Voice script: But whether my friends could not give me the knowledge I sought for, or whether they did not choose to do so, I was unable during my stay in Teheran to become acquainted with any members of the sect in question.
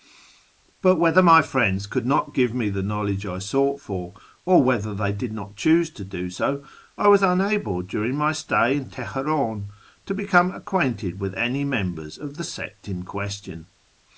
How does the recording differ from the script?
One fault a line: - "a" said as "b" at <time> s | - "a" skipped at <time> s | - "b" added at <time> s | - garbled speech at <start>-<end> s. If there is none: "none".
none